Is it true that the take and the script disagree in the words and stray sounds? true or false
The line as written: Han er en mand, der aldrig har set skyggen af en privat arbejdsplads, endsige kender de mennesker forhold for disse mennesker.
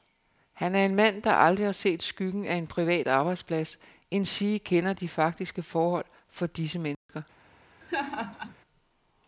true